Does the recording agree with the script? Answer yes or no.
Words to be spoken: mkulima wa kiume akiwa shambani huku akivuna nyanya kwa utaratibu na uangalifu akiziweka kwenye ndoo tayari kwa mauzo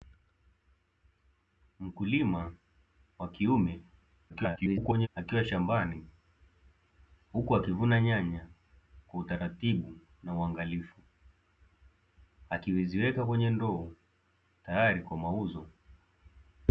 no